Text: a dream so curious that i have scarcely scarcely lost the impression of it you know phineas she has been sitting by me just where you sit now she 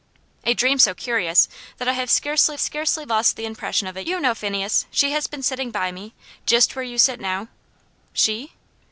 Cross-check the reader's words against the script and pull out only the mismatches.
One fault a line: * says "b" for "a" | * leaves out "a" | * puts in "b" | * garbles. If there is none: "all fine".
all fine